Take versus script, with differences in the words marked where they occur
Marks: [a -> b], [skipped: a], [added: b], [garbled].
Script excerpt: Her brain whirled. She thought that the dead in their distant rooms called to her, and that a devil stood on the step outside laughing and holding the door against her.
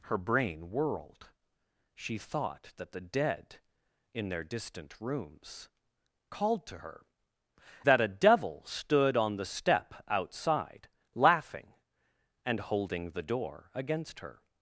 Her brain whirled. She thought that the dead in their distant rooms called to her, [skipped: and] that a devil stood on the step outside laughing and holding the door against her.